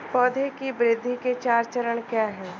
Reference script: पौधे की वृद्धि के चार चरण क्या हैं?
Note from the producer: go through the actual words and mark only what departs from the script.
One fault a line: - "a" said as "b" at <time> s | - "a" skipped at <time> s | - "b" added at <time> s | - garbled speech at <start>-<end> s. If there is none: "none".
none